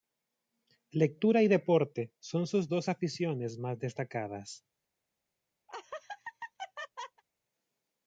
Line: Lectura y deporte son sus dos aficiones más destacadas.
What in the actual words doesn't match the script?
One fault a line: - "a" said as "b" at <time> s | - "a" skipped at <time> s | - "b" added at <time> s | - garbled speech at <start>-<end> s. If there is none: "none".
none